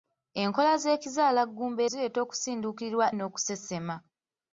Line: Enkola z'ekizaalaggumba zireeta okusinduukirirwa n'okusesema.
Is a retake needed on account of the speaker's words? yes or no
no